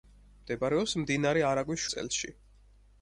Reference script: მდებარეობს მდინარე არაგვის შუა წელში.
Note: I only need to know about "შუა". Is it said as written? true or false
false